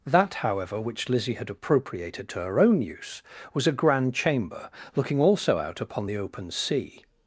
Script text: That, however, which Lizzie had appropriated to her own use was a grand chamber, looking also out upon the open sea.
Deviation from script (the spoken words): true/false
false